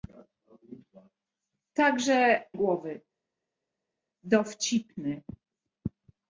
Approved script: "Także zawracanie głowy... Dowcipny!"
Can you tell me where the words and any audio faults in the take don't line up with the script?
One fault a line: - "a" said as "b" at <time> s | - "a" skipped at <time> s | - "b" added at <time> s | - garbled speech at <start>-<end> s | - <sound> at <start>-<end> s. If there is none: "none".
- "zawracanie" skipped at 2.4 s